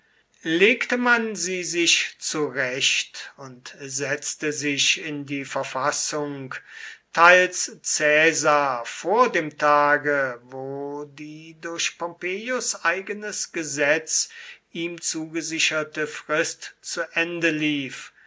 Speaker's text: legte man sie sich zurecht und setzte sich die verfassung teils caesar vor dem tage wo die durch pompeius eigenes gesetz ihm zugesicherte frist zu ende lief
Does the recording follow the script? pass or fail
fail